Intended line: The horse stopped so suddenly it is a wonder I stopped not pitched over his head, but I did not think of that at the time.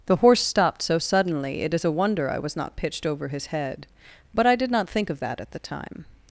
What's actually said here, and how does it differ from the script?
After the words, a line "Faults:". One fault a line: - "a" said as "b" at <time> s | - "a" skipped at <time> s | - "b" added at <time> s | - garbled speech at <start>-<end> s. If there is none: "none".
The horse stopped so suddenly it is a wonder I was not pitched over his head, but I did not think of that at the time.
Faults:
- "stopped" said as "was" at 2.4 s